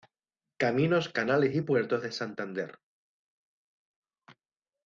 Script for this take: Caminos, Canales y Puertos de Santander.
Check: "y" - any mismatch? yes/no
no